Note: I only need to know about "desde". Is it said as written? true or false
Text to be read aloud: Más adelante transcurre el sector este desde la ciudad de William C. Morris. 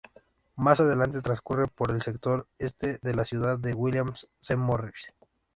false